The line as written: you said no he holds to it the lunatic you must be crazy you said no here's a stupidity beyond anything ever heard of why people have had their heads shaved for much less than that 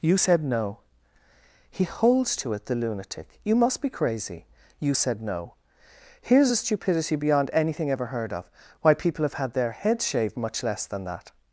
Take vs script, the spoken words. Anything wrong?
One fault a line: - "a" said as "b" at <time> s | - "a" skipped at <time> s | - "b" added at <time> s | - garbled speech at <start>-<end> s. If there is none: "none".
- "for" skipped at 10.4 s